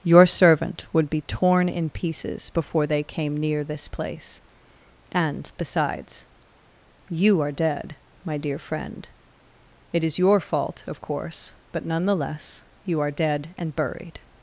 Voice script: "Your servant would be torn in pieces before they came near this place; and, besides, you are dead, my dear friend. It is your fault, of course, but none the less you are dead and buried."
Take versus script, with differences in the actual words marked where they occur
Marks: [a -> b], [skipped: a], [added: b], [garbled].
"Your servant would be torn in pieces before they came near this place; and, besides, you are dead, my dear friend. It is your fault, of course, but none the less you are dead and buried."